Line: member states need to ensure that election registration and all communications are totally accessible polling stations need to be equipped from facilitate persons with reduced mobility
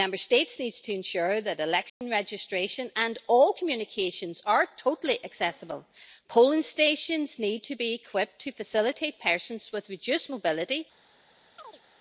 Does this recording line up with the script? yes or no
no